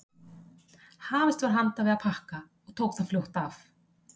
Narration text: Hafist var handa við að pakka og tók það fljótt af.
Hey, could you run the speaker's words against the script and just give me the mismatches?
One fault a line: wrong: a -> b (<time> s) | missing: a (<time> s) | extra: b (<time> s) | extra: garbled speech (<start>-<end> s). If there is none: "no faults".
no faults